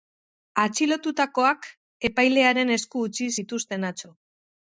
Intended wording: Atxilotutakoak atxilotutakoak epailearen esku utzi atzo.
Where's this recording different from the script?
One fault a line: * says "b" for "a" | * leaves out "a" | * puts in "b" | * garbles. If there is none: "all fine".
* leaves out "atxilotutakoak"
* puts in "zituzten"